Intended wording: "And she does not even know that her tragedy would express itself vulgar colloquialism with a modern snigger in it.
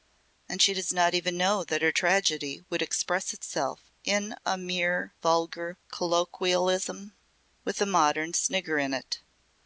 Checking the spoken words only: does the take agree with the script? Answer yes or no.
no